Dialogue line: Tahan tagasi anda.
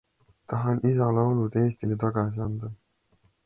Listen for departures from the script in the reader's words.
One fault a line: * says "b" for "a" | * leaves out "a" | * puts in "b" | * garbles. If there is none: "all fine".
* puts in "isa laulud Eestile"